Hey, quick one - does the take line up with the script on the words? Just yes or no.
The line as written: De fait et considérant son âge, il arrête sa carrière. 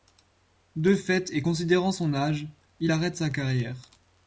yes